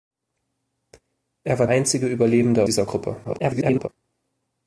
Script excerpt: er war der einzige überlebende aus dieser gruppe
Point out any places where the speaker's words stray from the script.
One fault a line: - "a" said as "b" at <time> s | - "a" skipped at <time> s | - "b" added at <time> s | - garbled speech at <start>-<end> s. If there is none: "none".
- "der" skipped at 1.7 s
- "aus" skipped at 2.6 s
- garbled speech at 3.2-3.9 s